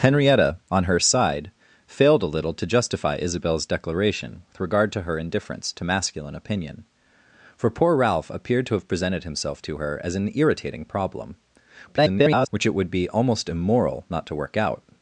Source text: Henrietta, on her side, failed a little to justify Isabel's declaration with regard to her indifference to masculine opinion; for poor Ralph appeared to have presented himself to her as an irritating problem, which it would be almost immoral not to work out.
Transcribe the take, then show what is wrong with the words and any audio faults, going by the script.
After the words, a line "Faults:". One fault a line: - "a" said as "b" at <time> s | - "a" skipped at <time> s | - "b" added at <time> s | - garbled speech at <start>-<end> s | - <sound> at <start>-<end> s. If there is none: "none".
Henrietta, on her side, failed a little to justify Isabel's declaration with regard to her indifference to masculine opinion; for poor Ralph appeared to have presented himself to her as an irritating problem, [garbled] which it would be almost immoral not to work out.
Faults:
- garbled speech at 11.9-12.5 s